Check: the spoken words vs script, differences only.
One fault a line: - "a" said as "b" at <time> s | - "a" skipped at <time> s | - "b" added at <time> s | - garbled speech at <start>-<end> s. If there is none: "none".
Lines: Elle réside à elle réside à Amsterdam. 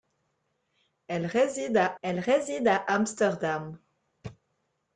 none